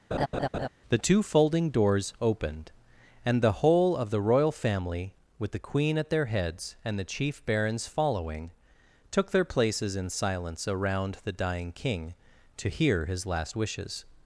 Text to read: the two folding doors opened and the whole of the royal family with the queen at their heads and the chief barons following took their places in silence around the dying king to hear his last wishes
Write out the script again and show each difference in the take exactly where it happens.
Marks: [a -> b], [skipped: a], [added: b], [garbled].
the two folding doors opened and the whole of the royal family with the queen at their heads and the chief barons following took their places in silence around the dying king to hear his last wishes